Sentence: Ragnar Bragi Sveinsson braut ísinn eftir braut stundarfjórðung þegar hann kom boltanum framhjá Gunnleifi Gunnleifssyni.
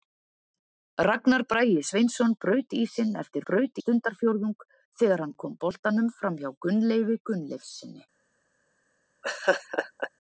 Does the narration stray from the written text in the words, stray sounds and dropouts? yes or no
yes